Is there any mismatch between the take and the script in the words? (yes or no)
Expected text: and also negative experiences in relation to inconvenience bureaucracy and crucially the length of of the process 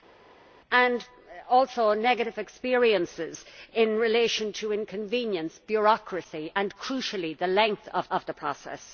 no